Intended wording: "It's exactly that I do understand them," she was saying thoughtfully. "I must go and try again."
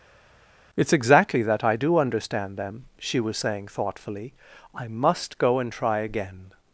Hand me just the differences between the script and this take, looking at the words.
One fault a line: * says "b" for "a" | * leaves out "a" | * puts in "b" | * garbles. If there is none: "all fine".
all fine